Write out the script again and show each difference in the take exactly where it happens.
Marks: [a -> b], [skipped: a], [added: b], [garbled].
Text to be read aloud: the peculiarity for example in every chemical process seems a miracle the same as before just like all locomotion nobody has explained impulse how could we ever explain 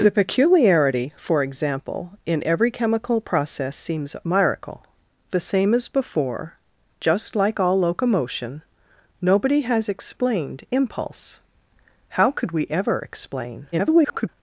the peculiarity for example in every chemical process seems a miracle the same as before just like all locomotion nobody has explained impulse how could we ever explain [garbled]